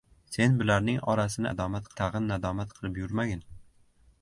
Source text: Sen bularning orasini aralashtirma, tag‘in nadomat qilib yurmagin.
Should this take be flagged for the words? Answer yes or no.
yes